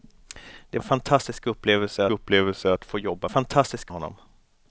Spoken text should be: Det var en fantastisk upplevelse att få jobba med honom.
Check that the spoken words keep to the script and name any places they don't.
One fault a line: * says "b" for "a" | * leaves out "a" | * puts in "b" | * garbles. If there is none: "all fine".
* leaves out "var"
* puts in "upplevelse"
* says "fantastisk" for "med"